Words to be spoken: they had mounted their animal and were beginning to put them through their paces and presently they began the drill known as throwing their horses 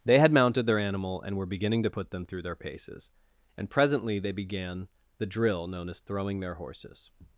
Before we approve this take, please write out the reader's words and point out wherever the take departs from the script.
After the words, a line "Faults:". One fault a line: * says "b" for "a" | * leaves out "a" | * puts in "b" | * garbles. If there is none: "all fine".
they had mounted their animal and were beginning to put them through their paces and presently they began the drill known as throwing their horses
Faults:
all fine